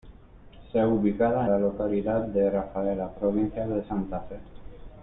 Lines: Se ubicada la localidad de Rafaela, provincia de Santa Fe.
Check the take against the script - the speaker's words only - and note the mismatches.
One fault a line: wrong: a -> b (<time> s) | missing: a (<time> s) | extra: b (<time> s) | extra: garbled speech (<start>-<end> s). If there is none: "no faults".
no faults